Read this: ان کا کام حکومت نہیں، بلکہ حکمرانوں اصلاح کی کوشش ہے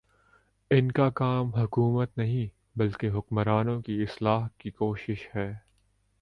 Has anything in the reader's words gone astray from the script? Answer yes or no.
yes